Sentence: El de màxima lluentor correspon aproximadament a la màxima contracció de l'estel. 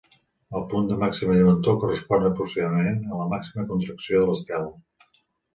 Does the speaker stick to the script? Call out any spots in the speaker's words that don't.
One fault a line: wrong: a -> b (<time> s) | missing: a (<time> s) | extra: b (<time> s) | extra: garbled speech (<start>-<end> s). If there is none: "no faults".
extra: punt (0.7 s)